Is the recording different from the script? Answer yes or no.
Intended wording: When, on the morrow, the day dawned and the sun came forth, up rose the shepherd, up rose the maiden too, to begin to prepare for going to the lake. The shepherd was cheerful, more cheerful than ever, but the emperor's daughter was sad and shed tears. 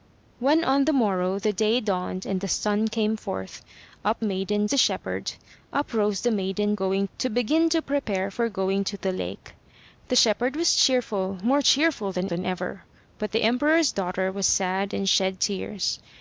yes